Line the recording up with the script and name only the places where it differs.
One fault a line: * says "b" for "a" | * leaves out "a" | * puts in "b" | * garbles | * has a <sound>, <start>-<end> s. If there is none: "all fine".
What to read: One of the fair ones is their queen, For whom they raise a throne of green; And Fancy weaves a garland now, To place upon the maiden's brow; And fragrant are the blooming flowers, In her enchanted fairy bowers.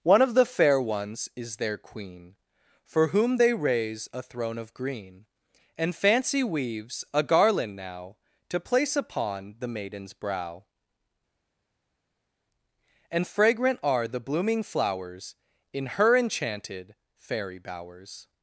all fine